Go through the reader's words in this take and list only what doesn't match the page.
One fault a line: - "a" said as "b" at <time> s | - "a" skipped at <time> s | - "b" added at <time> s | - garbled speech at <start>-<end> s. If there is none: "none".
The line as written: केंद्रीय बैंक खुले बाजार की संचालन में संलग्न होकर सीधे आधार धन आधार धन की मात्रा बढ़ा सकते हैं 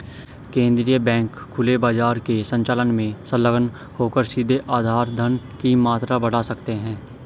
- "की" said as "के" at 2.2 s
- "आधार धन" skipped at 5.4 s